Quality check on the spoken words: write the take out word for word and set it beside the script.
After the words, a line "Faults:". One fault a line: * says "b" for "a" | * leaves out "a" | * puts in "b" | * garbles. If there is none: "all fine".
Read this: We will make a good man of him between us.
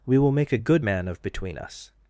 We will make a good man of between us.
Faults:
* leaves out "him"